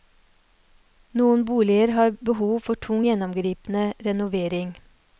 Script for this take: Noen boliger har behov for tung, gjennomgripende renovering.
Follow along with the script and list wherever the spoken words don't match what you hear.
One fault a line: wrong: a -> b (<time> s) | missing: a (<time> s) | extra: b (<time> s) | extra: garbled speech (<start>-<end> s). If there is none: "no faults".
no faults